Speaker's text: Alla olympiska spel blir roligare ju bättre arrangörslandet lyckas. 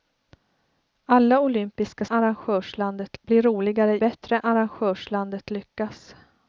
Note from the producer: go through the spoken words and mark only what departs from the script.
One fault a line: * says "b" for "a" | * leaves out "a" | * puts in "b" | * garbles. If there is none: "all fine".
* says "arrangörslandet" for "spel"
* leaves out "ju"